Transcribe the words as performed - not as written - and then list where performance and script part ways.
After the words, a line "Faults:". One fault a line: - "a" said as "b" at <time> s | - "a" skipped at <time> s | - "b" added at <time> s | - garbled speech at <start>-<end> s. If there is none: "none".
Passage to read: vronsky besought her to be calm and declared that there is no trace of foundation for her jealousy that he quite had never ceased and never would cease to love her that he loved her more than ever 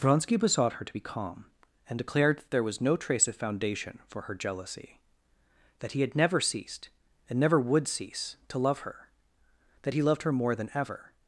vronsky besought her to be calm and declared that there was no trace of foundation for her jealousy that he had never ceased and never would cease to love her that he loved her more than ever
Faults:
- "is" said as "was" at 2.6 s
- "quite" skipped at 6.0 s